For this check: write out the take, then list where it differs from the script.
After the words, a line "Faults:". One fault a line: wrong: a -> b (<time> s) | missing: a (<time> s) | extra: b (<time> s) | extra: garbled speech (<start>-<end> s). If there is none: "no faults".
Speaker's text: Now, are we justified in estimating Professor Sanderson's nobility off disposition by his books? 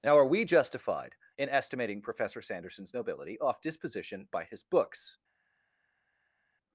Now, are we justified in estimating Professor Sanderson's nobility off disposition by his books?
Faults:
no faults